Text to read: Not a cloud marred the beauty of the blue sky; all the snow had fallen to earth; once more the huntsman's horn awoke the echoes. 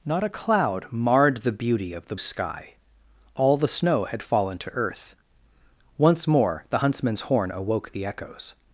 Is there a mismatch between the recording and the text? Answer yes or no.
yes